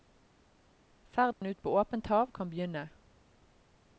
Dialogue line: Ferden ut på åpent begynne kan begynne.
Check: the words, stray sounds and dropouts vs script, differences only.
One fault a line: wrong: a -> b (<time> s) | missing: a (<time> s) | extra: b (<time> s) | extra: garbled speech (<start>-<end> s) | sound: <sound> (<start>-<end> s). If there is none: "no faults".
sound: dropout (1.3-1.4 s)
wrong: begynne -> hav (2.1 s)